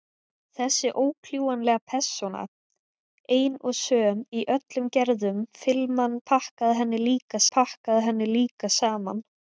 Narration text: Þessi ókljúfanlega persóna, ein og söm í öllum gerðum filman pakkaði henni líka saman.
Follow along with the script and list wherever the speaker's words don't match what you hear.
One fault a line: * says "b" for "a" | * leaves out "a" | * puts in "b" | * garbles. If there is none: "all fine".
* puts in "pakkaði henni líka"